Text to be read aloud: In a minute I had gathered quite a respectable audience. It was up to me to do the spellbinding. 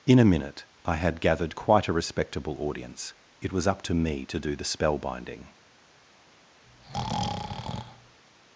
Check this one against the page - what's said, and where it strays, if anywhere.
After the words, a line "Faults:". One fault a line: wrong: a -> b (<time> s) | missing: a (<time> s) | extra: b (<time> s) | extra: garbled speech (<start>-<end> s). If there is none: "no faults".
In a minute I had gathered quite a respectable audience. It was up to me to do the spellbinding.
Faults:
no faults